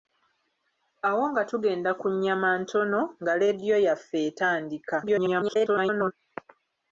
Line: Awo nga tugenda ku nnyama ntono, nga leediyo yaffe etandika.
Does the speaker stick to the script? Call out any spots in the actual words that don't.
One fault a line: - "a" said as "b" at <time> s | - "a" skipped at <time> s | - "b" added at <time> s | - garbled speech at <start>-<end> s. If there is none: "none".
- garbled speech at 5.0-6.1 s